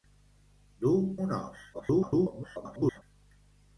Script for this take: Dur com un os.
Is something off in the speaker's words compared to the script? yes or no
yes